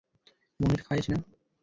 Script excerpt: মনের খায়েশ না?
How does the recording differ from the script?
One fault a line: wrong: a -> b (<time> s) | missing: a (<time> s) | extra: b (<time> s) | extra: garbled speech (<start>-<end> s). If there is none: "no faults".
no faults